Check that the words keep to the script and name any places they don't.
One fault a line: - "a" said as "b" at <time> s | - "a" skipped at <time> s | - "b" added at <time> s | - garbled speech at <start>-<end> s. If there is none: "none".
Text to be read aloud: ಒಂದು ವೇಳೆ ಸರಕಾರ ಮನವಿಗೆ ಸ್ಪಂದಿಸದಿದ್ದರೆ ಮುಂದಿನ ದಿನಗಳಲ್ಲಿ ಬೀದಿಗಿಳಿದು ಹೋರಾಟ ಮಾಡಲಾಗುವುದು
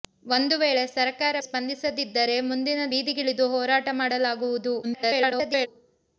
- "ಮನವಿಗೆ" skipped at 1.4 s
- "ದಿನಗಳಲ್ಲಿ" skipped at 2.9 s
- garbled speech at 4.8-5.7 s